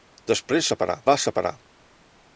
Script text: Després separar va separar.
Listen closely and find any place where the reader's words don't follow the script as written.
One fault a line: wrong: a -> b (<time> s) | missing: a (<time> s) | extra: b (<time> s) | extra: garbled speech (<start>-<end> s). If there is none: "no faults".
no faults